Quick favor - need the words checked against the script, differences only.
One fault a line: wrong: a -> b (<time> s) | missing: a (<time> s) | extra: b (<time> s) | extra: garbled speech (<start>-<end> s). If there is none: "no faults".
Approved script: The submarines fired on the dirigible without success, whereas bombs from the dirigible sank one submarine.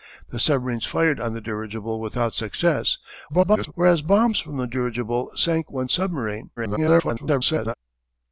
extra: garbled speech (3.3-3.7 s)
extra: garbled speech (6.6-7.7 s)